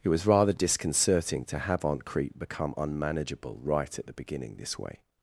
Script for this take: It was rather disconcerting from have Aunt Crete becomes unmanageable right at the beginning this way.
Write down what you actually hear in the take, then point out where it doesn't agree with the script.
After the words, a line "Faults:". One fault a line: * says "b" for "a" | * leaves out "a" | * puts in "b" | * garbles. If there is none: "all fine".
It was rather disconcerting to have Aunt Crete become unmanageable right at the beginning this way.
Faults:
* says "to" for "from"
* says "become" for "becomes"